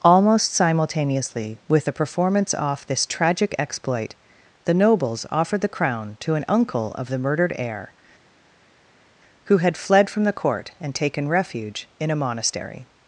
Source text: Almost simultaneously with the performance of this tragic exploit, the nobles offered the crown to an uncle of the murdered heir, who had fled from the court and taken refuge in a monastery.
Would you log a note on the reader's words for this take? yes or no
yes